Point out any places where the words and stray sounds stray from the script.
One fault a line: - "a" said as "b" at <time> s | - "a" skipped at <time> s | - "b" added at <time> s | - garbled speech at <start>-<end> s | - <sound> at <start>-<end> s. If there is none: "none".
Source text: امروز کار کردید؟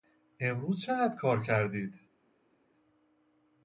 - "چقدر" added at 0.8 s